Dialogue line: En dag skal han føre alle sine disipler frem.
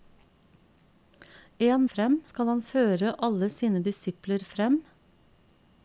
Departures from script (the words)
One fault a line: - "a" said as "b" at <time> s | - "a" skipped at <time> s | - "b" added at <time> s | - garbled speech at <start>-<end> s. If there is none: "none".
- "dag" said as "frem" at 1.9 s